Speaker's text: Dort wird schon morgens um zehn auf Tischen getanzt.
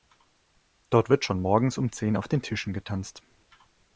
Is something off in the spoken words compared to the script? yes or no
yes